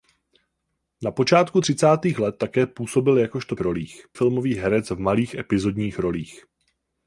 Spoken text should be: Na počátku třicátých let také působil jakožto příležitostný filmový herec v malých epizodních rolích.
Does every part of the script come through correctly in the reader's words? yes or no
no